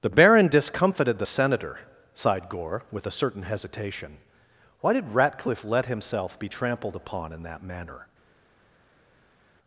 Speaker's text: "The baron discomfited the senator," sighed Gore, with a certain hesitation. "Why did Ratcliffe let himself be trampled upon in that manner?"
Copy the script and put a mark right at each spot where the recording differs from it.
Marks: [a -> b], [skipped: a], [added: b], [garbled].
"The baron discomfited the senator," sighed Gore, with a certain hesitation. "Why did Ratcliffe let himself be trampled upon in that manner?"